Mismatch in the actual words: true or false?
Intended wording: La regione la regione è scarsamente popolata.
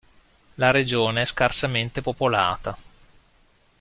true